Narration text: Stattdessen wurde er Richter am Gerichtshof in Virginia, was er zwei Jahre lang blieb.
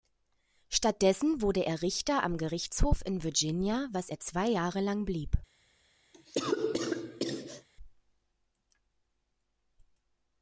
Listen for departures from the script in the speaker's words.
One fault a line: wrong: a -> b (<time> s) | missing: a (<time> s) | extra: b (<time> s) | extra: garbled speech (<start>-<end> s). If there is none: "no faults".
no faults